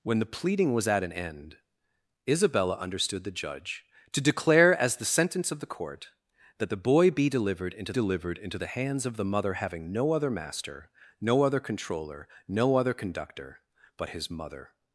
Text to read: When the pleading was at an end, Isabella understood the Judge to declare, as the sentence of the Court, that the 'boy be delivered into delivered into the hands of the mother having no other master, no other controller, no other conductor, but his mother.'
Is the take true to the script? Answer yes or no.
yes